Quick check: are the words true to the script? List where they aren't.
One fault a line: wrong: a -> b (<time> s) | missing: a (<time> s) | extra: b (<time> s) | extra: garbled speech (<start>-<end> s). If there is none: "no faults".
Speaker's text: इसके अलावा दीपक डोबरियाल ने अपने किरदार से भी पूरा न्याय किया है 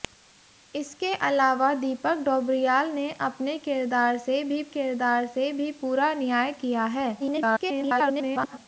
extra: किरदार से भी (4.7 s)
extra: garbled speech (7.2-8.6 s)